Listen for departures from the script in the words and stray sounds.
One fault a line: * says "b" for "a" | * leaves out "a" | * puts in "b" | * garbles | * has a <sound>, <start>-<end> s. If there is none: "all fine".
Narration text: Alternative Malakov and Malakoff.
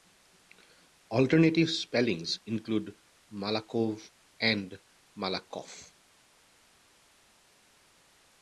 * puts in "spellings include"